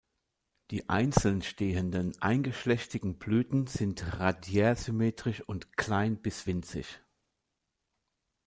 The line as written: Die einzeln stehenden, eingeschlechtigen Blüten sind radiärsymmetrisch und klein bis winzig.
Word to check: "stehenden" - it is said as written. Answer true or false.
true